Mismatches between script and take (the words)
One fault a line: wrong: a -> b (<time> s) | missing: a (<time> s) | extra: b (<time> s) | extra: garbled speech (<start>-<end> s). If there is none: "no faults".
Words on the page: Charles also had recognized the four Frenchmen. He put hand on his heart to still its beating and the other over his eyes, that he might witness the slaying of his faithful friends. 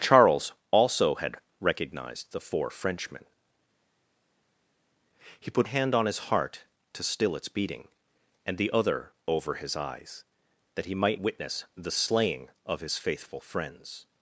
no faults